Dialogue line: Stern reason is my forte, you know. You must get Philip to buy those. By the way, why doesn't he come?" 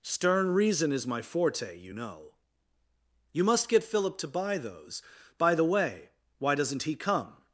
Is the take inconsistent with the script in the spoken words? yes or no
no